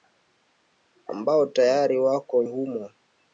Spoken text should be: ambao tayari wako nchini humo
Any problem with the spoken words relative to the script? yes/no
yes